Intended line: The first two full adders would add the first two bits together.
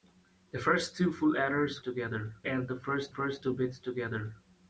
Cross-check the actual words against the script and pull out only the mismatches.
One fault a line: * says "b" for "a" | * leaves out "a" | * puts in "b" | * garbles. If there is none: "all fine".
* says "together" for "would"
* puts in "first"